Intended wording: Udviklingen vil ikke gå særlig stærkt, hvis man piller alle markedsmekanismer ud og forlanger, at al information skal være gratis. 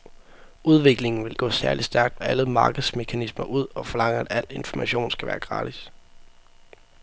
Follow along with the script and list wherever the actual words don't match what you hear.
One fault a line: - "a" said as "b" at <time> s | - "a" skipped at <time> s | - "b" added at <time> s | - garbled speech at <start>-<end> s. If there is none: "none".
- "ikke" skipped at 1.4 s
- "hvis man piller" skipped at 2.2 s